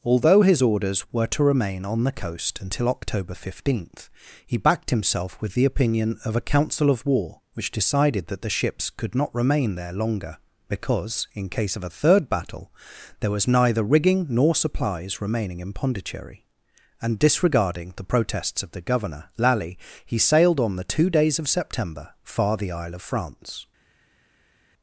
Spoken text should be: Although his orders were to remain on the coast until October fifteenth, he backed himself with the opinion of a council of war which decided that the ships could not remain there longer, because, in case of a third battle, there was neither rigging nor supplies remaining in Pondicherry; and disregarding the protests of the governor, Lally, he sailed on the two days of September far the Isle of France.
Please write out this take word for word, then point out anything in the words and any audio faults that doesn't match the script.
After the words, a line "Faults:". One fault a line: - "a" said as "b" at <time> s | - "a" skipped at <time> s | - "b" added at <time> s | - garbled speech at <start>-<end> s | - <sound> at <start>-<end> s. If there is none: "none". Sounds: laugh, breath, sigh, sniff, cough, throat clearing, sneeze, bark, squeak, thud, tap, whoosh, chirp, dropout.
Although his orders were to remain on the coast until October fifteenth, he backed himself with the opinion of a council of war which decided that the ships could not remain there longer, because, in case of a third battle, there was neither rigging nor supplies remaining in Pondicherry; and disregarding the protests of the governor, Lally, he sailed on the two days of September far the Isle of France.
Faults:
none